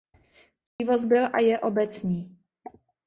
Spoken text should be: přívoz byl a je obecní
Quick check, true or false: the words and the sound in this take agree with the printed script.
false